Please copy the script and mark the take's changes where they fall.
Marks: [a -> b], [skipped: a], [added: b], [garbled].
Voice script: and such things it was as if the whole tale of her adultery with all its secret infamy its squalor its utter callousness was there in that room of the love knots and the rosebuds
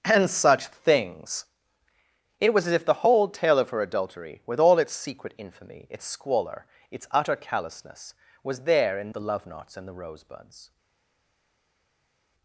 and such things it was as if the whole tale of her adultery with all its secret infamy its squalor its utter callousness was there in [skipped: that room of] the love knots and the rosebuds